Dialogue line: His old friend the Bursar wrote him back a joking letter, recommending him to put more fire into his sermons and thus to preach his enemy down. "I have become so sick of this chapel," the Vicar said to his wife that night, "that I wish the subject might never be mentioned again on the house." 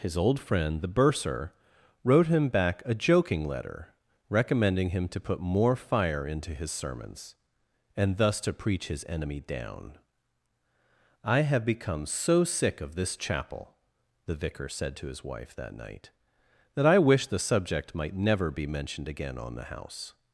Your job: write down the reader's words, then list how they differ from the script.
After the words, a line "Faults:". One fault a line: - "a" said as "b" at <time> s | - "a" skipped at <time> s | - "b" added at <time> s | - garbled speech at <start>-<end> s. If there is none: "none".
His old friend the Bursar wrote him back a joking letter, recommending him to put more fire into his sermons and thus to preach his enemy down. "I have become so sick of this chapel," the Vicar said to his wife that night, "that I wish the subject might never be mentioned again on the house."
Faults:
none